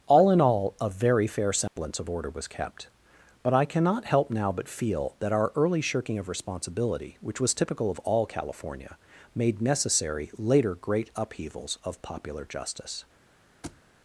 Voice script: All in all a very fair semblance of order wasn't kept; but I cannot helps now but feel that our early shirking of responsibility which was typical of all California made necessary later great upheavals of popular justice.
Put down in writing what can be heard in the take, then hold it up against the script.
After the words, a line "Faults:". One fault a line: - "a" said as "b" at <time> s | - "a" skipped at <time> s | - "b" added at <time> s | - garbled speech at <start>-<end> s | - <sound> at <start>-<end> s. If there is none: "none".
All in all a very fair semblance of order was kept; but I cannot help now but feel that our early shirking of responsibility which was typical of all California made necessary later great upheavals of popular justice.
Faults:
- dropout at 1.7-1.8 s
- "wasn't" said as "was" at 2.3 s
- "helps" said as "help" at 4.0 s
- thud at 13.6-13.8 s